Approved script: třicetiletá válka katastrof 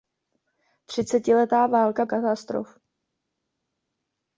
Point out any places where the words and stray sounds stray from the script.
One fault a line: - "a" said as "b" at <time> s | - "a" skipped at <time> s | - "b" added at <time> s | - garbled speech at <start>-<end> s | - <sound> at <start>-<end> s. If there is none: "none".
none